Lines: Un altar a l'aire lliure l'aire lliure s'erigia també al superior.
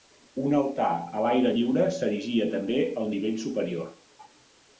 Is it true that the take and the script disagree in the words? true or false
true